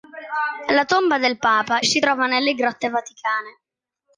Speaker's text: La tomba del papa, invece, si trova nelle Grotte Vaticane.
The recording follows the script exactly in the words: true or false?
false